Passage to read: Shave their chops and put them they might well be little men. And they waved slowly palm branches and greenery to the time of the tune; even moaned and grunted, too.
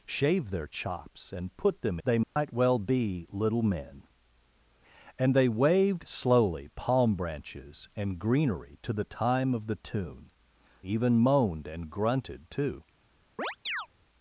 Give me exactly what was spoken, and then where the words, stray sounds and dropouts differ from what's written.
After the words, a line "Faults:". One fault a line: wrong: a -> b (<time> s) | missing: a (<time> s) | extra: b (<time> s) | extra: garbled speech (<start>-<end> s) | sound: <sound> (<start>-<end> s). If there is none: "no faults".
Shave their chops and put them they might well be little men. And they waved slowly palm branches and greenery to the time of the tune; even moaned and grunted, too.
Faults:
sound: dropout (2.2-2.4 s)
sound: chirp (13.4-13.9 s)